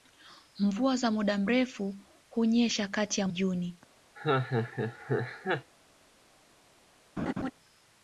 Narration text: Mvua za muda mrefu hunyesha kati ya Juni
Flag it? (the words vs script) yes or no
no